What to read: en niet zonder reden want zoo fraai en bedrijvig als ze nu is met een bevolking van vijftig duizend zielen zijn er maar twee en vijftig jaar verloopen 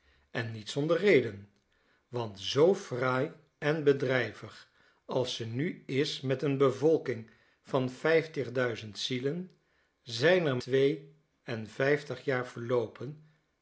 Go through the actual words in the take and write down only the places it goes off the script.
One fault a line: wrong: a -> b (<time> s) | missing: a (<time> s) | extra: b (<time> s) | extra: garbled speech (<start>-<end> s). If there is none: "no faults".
missing: maar (10.6 s)